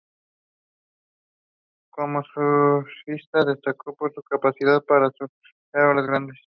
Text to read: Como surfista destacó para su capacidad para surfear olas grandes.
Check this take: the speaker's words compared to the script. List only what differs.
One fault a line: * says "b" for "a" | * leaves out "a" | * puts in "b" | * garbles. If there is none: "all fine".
* says "por" for "para"